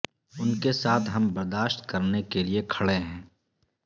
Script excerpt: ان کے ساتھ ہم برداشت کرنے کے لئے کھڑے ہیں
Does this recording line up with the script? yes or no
yes